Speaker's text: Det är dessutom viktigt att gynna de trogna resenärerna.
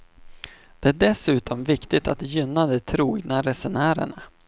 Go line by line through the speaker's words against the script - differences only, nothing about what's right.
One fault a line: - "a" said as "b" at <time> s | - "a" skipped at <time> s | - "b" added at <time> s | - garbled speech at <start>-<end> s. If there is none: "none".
none